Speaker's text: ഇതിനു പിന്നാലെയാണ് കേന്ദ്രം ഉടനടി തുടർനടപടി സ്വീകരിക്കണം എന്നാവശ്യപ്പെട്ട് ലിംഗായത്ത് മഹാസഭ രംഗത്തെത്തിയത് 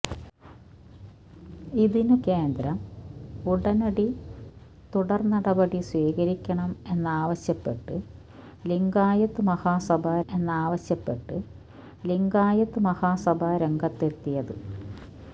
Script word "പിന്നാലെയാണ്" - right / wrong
wrong